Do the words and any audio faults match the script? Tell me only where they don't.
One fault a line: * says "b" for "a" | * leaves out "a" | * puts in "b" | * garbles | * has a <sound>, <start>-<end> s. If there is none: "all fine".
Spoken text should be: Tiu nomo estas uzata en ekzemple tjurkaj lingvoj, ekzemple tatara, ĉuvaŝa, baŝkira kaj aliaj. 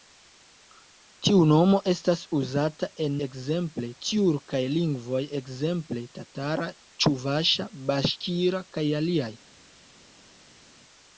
all fine